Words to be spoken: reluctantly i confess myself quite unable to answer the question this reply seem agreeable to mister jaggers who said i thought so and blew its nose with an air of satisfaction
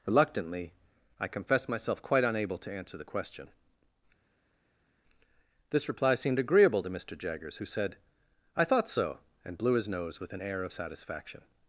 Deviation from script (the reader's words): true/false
true